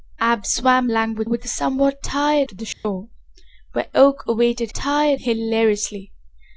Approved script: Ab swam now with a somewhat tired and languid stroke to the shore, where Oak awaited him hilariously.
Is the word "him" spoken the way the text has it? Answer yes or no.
no